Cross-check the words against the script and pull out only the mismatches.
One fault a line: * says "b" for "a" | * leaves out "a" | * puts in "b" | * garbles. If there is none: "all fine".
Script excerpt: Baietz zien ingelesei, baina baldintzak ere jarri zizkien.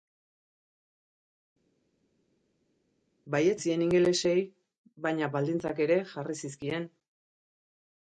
all fine